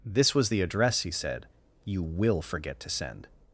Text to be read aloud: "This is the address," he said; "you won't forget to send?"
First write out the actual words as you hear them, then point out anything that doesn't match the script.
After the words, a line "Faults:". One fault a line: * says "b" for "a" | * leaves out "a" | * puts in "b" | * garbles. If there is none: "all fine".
"This was the address," he said; "you will forget to send?"
Faults:
* says "was" for "is"
* says "will" for "won't"